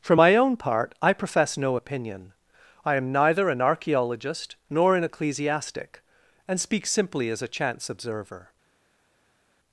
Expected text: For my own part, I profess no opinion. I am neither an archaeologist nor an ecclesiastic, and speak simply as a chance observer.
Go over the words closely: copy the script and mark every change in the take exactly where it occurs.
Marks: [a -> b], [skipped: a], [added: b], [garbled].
For my own part, I profess no opinion. I am neither an archaeologist nor an ecclesiastic, and speak simply as a chance observer.